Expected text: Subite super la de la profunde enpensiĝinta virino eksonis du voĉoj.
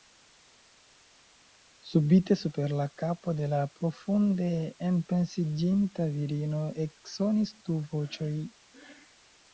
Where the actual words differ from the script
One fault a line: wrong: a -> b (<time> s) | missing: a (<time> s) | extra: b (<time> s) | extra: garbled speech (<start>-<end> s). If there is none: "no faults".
extra: kapo (3.0 s)